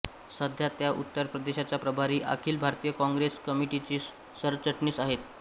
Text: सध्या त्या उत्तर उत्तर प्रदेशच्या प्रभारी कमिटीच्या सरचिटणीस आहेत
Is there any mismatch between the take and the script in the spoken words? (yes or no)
yes